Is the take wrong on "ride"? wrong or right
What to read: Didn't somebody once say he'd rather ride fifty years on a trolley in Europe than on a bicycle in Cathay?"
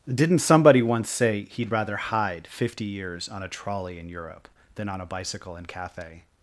wrong